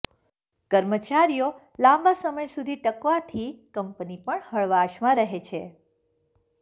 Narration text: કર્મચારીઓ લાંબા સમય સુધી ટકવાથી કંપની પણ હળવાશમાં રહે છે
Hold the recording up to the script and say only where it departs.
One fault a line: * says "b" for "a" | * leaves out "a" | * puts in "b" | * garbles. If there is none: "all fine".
all fine